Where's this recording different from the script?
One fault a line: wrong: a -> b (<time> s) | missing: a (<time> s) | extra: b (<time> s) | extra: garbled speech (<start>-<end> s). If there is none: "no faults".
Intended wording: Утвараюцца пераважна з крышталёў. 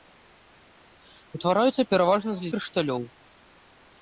no faults